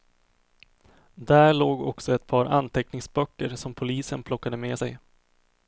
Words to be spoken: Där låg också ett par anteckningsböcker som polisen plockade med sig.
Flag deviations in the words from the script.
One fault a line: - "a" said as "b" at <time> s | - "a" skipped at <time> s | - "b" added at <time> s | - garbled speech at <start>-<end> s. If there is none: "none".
none